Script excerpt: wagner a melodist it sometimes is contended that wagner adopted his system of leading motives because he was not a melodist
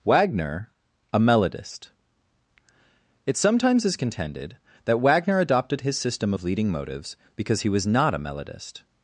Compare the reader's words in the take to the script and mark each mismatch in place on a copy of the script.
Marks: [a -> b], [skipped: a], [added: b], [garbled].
wagner a melodist it sometimes is contended that wagner adopted his system of leading motives because he was not a melodist